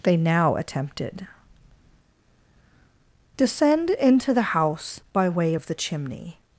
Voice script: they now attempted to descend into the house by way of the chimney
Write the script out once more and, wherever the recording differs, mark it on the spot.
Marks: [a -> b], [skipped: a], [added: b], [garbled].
they now attempted [skipped: to] descend into the house by way of the chimney